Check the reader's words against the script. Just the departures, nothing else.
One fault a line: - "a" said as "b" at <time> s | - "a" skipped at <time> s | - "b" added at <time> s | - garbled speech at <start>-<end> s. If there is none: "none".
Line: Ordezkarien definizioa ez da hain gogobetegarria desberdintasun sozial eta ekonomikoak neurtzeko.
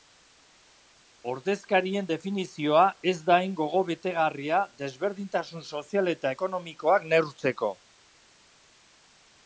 none